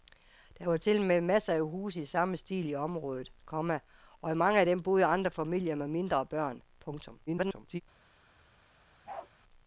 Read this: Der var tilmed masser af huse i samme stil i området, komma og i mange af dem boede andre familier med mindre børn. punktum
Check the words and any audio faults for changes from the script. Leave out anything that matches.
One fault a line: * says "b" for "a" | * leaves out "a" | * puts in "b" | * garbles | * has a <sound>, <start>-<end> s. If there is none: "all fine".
* garbles
* has a bark, 9.1-9.3 s